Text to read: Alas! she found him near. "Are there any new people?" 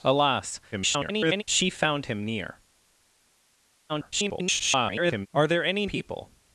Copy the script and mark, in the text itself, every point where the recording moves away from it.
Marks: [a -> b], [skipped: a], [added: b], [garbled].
Alas! [garbled] she found him near. [garbled] "Are there any [skipped: new] people?"